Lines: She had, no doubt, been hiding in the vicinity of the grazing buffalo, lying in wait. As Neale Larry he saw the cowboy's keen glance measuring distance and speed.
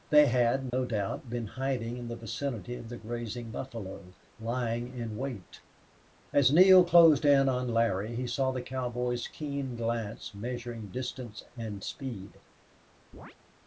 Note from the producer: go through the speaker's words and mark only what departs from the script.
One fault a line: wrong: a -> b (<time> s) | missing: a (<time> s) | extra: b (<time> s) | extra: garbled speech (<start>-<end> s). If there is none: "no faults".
wrong: She -> They (0.1 s)
extra: closed in on (6.9 s)